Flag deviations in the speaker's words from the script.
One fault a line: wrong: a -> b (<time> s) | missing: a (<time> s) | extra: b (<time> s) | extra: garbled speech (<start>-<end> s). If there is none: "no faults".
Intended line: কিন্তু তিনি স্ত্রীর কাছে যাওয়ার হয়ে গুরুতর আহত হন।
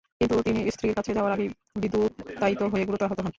extra: আগেই বিদ্যুতায়িত (1.3 s)